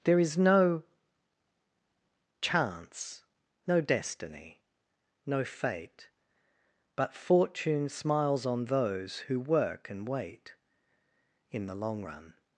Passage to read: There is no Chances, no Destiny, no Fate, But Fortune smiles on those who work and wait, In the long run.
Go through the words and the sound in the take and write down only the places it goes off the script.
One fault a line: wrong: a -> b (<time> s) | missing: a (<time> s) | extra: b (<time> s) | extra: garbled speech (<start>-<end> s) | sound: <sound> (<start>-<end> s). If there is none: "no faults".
wrong: Chances -> Chance (2.4 s)